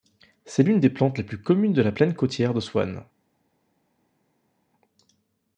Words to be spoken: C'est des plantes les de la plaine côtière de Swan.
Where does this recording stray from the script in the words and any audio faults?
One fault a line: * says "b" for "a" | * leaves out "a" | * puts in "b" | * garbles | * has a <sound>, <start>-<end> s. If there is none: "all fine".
* puts in "l'une"
* puts in "plus communes"